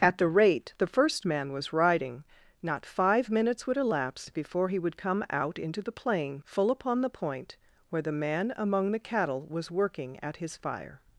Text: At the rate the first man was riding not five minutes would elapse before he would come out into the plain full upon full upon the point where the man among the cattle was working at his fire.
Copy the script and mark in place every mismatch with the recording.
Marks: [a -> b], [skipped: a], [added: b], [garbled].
At the rate the first man was riding not five minutes would elapse before he would come out into the plain full upon [skipped: full upon] the point where the man among the cattle was working at his fire.